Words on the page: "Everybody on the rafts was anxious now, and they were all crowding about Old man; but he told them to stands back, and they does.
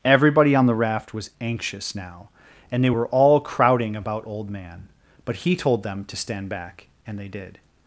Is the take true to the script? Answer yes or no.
no